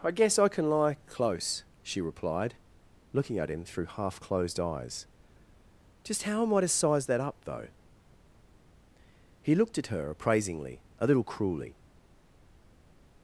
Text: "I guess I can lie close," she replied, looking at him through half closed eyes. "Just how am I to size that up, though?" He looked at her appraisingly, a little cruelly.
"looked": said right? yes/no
yes